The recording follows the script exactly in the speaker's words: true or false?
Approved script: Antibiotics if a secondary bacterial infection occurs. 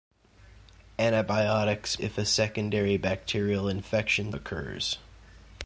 true